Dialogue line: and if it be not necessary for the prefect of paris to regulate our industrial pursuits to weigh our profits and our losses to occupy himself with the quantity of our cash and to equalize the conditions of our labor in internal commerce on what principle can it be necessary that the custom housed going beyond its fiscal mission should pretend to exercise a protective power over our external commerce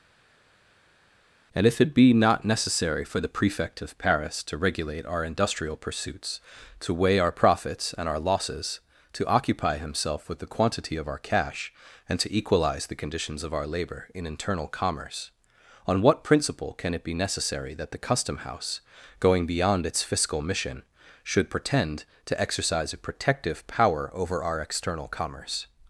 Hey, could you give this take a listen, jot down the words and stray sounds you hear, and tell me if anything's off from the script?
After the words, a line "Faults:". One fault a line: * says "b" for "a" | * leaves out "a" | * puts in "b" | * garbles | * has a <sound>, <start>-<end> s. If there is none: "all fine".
and if it be not necessary for the prefect of paris to regulate our industrial pursuits to weigh our profits and our losses to occupy himself with the quantity of our cash and to equalize the conditions of our labor in internal commerce on what principle can it be necessary that the custom house going beyond its fiscal mission should pretend to exercise a protective power over our external commerce
Faults:
* says "house" for "housed"